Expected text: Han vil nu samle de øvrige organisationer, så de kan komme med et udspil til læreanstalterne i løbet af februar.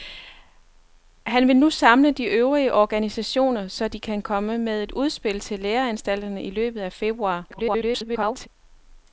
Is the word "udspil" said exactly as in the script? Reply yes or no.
yes